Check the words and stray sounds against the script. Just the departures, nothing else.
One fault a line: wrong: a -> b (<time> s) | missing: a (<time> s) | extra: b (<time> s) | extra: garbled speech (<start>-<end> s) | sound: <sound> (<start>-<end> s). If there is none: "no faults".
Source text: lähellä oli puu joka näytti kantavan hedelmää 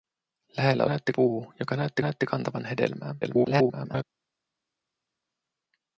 wrong: oli -> näytti (0.9 s)
extra: näytti (2.0 s)
extra: garbled speech (3.2-4.0 s)